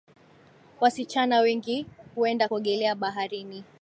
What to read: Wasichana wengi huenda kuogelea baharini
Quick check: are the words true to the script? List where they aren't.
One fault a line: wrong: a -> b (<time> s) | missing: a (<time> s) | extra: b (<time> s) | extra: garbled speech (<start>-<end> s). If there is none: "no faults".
no faults